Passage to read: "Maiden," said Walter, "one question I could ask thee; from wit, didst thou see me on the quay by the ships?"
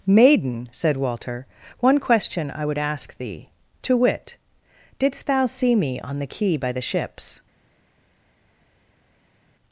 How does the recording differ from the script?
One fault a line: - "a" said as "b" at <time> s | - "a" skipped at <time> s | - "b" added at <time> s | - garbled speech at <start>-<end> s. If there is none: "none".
- "could" said as "would" at 2.6 s
- "from" said as "to" at 3.8 s